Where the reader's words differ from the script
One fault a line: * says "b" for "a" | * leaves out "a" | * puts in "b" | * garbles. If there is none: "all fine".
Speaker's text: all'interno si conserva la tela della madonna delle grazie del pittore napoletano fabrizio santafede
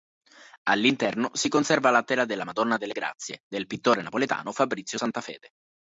all fine